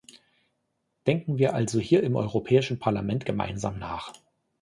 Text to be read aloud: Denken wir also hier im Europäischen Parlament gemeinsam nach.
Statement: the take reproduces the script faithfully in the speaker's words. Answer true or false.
true